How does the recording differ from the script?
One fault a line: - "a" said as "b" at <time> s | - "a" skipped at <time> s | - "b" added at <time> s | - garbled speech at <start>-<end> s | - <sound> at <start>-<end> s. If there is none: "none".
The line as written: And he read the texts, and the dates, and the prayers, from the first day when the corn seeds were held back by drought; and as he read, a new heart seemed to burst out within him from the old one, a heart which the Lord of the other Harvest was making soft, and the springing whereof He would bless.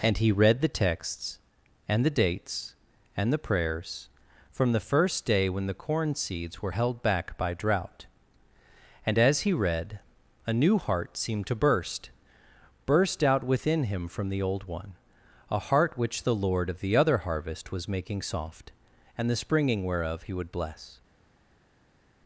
- "burst" added at 12.9 s